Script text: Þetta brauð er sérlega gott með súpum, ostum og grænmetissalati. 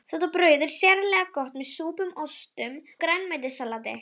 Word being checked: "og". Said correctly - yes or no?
no